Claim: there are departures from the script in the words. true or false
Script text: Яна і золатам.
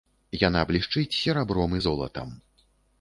true